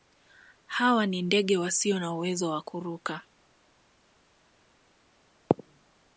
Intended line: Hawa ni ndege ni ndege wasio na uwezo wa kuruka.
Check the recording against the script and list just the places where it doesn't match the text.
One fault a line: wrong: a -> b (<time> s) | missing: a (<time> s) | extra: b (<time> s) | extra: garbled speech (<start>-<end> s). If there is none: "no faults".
missing: ni ndege (1.6 s)